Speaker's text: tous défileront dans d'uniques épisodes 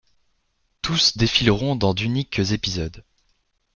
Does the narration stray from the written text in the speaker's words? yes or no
no